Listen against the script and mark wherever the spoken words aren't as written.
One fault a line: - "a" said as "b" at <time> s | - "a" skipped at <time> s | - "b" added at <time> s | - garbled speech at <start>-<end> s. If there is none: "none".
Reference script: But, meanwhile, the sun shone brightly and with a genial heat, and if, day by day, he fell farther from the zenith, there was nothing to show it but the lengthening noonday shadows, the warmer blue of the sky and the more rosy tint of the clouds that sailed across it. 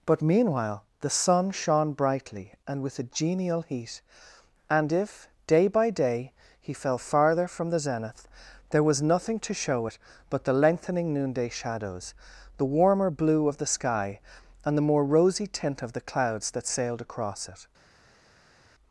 none